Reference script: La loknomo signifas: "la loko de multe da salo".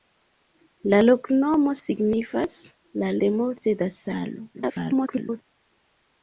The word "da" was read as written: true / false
true